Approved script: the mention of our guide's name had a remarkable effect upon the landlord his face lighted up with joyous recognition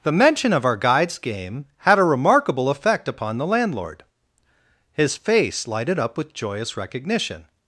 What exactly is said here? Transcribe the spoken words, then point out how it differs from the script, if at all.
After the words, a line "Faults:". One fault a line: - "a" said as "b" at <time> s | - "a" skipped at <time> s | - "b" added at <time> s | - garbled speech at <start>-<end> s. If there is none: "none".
the mention of our guide's game had a remarkable effect upon the landlord his face lighted up with joyous recognition
Faults:
- "name" said as "game" at 1.2 s